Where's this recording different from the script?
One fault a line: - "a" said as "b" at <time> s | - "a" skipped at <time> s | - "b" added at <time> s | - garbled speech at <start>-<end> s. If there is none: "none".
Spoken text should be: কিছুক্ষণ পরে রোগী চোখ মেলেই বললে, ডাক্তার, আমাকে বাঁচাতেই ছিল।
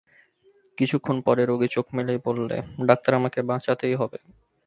- "ছিল" said as "হবে" at 4.0 s